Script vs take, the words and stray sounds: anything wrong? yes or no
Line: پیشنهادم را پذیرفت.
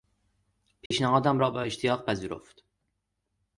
yes